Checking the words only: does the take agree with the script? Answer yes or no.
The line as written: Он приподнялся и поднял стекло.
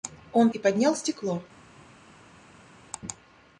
no